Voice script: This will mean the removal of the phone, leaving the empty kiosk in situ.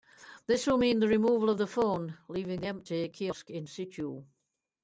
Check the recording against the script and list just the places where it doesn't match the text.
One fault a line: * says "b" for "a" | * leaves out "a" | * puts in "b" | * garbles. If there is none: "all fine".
all fine